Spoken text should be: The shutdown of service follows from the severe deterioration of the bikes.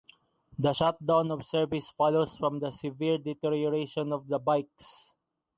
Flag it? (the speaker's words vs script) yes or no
no